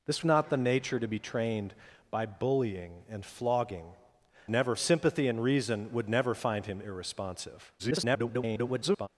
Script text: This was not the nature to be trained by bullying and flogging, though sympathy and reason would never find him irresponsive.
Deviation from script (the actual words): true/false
true